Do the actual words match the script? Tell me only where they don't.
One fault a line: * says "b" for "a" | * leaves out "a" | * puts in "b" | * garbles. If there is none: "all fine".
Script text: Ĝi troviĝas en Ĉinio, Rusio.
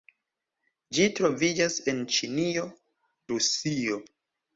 all fine